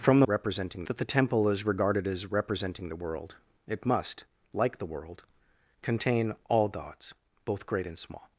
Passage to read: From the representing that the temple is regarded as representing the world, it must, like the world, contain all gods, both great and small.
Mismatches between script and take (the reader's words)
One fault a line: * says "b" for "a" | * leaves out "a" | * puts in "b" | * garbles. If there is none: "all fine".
all fine